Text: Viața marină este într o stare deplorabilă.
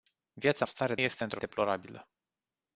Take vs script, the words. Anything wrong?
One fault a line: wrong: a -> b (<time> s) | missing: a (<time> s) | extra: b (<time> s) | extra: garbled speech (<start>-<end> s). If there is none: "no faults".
wrong: marină -> stare (0.7 s)
missing: stare (1.4 s)